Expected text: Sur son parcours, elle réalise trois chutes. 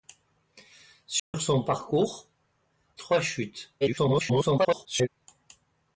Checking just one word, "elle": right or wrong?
wrong